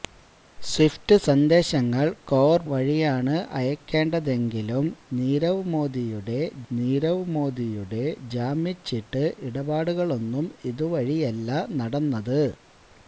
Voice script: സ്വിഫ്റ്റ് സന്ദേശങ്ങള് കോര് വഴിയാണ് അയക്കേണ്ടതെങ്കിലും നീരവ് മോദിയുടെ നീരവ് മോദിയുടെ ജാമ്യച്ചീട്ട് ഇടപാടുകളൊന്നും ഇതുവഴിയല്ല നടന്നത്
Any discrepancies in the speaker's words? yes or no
no